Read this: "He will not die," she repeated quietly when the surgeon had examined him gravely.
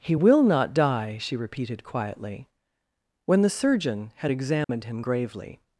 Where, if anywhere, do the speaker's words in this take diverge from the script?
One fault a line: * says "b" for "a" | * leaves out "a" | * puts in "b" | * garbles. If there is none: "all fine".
all fine